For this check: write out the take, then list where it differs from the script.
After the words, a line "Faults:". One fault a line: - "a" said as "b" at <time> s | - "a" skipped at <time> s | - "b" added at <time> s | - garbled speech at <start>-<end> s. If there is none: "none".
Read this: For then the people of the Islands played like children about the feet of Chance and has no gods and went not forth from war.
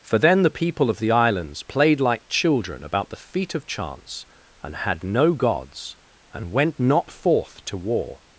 For then the people of the Islands played like children about the feet of Chance and had no gods and went not forth to war.
Faults:
- "has" said as "had" at 4.8 s
- "from" said as "to" at 7.7 s